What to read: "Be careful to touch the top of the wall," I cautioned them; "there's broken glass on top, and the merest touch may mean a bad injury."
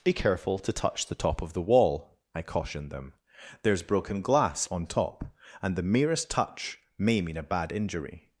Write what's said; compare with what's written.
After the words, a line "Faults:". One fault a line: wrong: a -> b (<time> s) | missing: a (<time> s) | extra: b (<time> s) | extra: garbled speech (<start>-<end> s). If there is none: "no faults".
"Be careful to touch the top of the wall," I cautioned them; "there's broken glass on top, and the merest touch may mean a bad injury."
Faults:
no faults